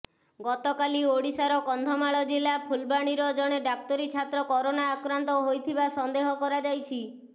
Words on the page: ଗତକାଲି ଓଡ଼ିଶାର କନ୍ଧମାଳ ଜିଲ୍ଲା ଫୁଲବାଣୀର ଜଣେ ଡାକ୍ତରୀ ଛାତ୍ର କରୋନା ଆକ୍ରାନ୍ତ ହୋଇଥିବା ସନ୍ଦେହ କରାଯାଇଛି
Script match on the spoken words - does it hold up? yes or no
yes